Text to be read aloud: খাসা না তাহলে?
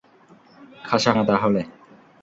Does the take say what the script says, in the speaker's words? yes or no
yes